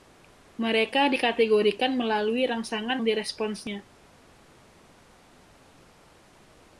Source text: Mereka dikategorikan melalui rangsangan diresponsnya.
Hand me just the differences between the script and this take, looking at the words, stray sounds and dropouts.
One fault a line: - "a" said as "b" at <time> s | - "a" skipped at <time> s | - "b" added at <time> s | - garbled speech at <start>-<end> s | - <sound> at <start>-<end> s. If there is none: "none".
none